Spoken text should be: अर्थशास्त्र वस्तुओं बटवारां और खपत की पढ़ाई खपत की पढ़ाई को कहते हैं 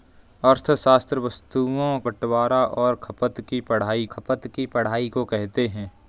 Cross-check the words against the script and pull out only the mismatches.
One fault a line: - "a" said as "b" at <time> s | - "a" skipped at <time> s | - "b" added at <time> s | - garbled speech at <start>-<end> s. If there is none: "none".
none